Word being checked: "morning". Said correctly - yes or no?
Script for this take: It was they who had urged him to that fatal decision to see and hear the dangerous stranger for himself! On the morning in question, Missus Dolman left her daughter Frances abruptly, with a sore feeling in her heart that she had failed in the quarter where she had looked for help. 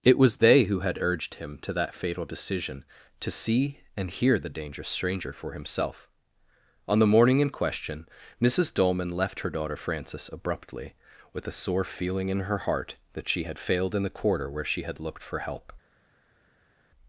yes